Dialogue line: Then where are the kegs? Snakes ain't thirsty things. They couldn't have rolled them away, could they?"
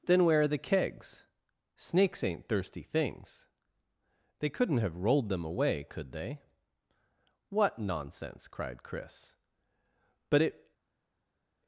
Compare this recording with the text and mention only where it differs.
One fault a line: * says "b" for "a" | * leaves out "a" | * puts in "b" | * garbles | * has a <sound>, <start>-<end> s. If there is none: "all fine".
* puts in "What nonsense cried Chris But it"